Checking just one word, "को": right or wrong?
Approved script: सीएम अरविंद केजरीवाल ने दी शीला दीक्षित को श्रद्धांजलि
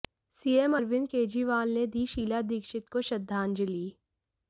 right